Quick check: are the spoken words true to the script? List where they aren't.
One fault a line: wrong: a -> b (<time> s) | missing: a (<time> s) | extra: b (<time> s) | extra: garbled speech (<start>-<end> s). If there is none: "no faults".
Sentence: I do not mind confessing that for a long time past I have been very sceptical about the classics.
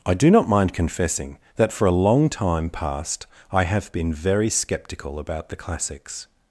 no faults